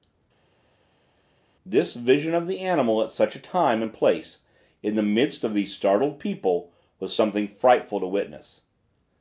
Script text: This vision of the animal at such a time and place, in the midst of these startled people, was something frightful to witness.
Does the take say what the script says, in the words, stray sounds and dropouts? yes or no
yes